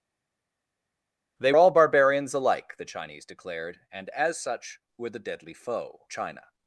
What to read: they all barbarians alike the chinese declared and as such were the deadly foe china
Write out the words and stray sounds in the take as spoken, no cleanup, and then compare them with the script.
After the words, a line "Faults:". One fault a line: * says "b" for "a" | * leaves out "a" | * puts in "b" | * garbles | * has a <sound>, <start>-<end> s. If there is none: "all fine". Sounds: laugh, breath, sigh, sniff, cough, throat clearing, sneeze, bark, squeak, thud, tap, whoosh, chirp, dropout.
they all barbarians alike the chinese declared and as such were the deadly foe china
Faults:
all fine